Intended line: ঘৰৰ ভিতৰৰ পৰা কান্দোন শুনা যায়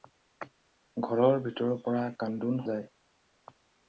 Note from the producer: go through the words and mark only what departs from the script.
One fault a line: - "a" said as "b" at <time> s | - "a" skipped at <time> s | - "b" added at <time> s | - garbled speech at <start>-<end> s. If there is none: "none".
- "শুনা" skipped at 2.6 s